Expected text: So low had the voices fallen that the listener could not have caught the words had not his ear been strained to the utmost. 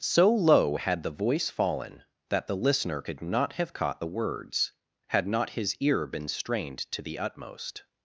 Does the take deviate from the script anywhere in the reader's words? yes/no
yes